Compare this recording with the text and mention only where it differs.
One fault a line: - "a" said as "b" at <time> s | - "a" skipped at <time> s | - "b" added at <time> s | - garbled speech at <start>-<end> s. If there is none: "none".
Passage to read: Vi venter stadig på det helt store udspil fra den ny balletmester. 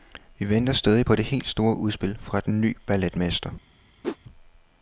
none